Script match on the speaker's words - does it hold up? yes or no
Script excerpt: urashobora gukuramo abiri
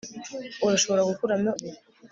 yes